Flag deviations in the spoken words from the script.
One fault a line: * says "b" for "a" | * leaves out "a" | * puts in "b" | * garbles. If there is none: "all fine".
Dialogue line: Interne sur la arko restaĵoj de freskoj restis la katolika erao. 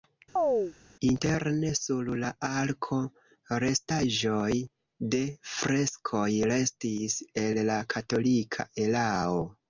* puts in "el"